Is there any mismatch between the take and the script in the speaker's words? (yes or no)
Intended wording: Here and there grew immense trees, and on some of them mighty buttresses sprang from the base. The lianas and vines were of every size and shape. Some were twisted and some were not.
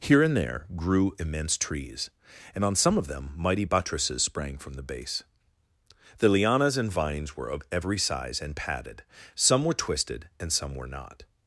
yes